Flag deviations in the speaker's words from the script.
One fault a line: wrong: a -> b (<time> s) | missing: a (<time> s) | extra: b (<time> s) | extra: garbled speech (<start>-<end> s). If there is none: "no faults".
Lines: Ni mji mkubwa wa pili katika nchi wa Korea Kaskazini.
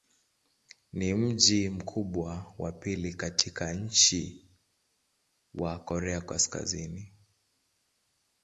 no faults